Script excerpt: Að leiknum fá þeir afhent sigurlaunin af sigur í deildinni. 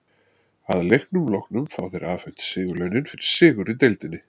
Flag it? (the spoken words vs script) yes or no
yes